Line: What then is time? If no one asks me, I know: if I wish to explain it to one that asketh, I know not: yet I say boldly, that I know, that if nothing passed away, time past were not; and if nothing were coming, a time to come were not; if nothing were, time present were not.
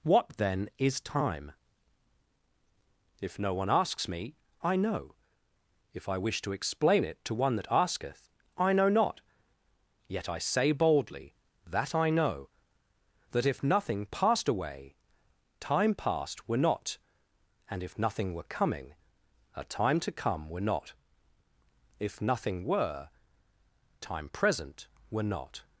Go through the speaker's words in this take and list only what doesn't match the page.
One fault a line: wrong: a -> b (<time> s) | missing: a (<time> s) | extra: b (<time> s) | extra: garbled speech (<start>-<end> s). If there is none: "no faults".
no faults